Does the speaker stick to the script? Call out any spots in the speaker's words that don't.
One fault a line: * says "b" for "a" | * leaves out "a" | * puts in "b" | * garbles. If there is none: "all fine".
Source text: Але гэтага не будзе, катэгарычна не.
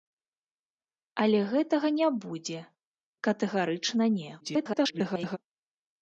* garbles